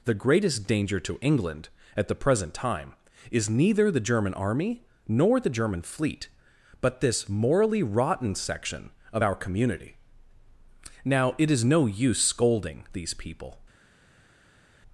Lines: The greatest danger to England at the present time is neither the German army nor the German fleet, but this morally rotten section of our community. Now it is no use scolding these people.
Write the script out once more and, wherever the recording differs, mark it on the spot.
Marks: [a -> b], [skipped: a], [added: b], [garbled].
The greatest danger to England at the present time is neither the German army nor the German fleet, but this morally rotten section of our community. Now it is no use scolding these people.